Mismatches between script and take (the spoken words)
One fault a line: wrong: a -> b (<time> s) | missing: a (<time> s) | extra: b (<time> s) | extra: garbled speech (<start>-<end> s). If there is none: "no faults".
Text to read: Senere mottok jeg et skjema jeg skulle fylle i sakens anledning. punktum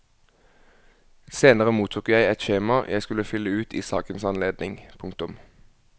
extra: ut (3.6 s)